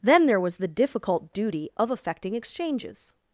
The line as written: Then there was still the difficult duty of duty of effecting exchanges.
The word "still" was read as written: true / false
false